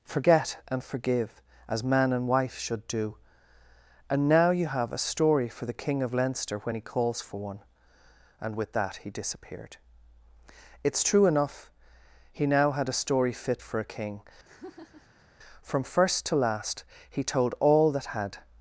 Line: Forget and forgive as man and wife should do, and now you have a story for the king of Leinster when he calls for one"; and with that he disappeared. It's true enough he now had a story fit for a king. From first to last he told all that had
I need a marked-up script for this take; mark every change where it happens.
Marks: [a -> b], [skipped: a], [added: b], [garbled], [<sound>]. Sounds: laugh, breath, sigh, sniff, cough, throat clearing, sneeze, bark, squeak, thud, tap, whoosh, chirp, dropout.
Forget and forgive as man and wife should do, and now you have a story for the king of Leinster when he calls for one"; and with that he disappeared. It's true enough he now had a story fit for a king. [laugh] From first to last he told all that had